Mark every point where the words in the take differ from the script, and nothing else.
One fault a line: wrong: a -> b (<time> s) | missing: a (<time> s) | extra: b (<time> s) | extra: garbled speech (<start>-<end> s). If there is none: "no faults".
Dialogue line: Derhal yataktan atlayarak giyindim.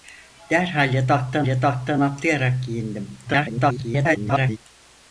extra: yataktan (1.5 s)
extra: garbled speech (3.3-4.6 s)